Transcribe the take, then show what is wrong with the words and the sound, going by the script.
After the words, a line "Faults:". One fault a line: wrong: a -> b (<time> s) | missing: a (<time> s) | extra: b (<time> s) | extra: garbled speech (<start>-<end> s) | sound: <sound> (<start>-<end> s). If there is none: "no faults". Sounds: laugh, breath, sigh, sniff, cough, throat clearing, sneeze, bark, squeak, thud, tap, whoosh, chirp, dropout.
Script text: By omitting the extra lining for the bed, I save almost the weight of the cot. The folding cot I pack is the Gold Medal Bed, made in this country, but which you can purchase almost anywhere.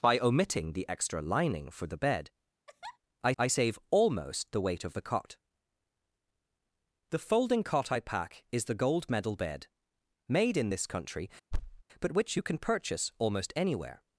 By omitting the extra lining for the bed, I I save almost the weight of the cot. The folding cot I pack is the Gold Medal Bed, made in this country, but which you can purchase almost anywhere.
Faults:
sound: laugh (2.7-3.0 s)
extra: I (3.4 s)
sound: thud (11.5-11.8 s)